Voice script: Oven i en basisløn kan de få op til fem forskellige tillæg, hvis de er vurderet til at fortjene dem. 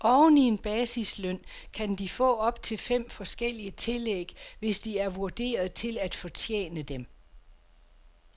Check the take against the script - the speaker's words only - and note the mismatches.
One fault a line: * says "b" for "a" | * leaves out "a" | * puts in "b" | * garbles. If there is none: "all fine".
all fine